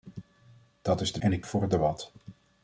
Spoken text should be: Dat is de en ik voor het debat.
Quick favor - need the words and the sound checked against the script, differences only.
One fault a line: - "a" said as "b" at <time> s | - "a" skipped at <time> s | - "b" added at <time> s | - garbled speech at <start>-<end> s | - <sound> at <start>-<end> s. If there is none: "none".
none